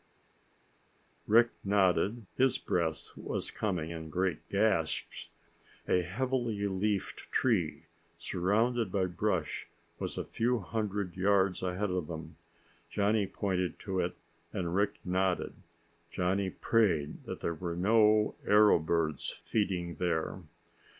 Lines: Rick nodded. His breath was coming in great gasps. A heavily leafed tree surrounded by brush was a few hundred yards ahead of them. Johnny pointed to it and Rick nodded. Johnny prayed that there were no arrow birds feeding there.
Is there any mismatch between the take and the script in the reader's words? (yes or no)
no